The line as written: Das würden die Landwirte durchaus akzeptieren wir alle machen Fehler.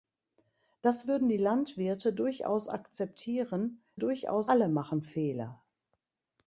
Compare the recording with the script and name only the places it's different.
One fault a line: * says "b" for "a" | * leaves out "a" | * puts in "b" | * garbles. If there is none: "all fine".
* says "durchaus" for "wir"